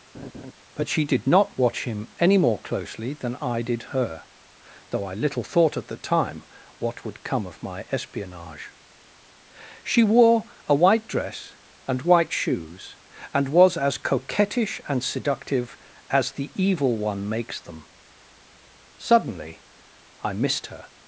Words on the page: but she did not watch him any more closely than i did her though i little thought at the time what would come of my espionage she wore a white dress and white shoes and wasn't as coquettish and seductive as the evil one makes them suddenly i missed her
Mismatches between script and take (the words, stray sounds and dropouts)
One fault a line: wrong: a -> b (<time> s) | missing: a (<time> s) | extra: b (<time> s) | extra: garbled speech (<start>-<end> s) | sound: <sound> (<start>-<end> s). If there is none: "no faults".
sound: laugh (0.1-0.5 s)
wrong: wasn't -> was (13.5 s)